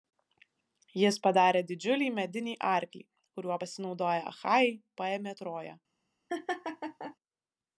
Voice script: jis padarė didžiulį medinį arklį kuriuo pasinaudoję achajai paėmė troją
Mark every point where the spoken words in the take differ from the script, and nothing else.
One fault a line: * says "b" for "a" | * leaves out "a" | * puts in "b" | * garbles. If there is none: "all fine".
all fine